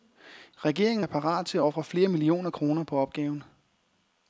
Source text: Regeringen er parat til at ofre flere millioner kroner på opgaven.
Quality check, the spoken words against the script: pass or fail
pass